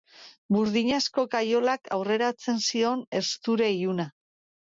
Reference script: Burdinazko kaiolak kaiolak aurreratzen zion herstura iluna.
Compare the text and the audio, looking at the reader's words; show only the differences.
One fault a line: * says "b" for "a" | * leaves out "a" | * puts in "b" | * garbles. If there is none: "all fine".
* leaves out "kaiolak"